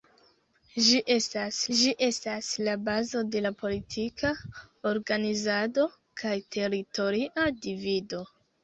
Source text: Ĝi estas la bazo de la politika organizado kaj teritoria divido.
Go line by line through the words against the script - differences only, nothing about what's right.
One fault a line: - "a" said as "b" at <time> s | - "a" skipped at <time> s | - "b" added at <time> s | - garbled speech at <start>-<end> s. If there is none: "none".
- "ĝi estas" added at 1.8 s